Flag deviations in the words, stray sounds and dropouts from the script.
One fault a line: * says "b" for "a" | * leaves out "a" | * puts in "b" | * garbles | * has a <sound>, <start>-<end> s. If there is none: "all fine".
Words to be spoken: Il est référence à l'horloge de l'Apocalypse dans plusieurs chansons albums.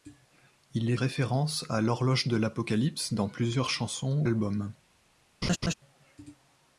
* has a laugh, 5.4-5.7 s